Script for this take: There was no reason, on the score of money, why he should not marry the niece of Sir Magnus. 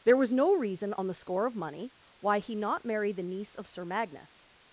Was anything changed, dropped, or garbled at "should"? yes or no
yes